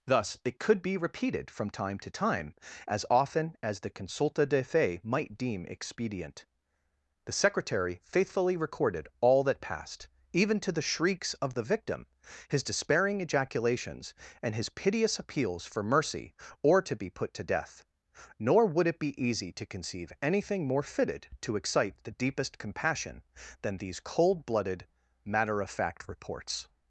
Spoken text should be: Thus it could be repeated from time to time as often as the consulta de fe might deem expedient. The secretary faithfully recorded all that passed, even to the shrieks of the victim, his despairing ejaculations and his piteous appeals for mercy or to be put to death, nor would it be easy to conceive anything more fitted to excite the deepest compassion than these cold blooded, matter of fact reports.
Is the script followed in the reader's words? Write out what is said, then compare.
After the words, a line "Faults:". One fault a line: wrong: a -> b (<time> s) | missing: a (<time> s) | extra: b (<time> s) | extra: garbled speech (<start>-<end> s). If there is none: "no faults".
Thus it could be repeated from time to time as often as the consulta de fe might deem expedient. The secretary faithfully recorded all that passed, even to the shrieks of the victim, his despairing ejaculations and his piteous appeals for mercy or to be put to death, nor would it be easy to conceive anything more fitted to excite the deepest compassion than these cold blooded, matter of fact reports.
Faults:
no faults